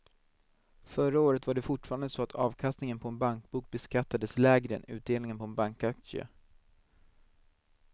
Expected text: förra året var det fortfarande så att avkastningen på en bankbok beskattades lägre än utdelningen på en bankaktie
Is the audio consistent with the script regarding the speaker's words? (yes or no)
yes